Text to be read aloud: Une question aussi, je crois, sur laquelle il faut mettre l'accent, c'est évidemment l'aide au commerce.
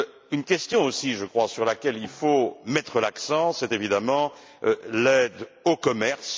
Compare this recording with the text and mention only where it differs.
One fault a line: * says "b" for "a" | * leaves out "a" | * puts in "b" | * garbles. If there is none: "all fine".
all fine